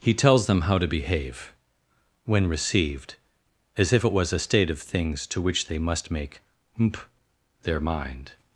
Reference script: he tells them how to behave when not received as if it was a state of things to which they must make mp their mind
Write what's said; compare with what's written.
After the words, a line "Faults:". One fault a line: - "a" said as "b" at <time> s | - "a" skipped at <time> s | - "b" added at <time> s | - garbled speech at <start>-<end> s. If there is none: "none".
he tells them how to behave when received as if it was a state of things to which they must make mp their mind
Faults:
- "not" skipped at 2.5 s